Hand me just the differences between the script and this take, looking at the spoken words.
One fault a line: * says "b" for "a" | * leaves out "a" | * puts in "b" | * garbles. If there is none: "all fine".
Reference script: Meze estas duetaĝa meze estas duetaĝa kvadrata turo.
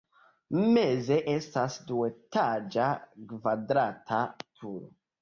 * leaves out "meze estas duetaĝa"